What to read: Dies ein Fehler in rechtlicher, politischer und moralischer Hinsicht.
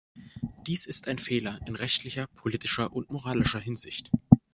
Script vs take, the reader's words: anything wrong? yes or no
yes